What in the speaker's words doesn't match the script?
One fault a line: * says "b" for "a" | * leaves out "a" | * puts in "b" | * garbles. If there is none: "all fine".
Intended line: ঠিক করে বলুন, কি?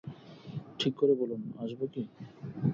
* puts in "আসব"